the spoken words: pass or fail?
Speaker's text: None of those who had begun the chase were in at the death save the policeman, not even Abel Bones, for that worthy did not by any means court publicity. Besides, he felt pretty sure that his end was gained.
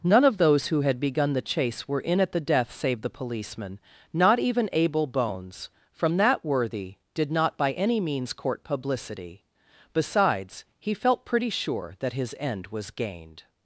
fail